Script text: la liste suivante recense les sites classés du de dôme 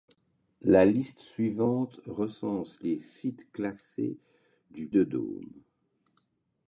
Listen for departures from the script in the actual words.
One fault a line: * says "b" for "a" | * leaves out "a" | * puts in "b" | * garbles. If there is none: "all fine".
all fine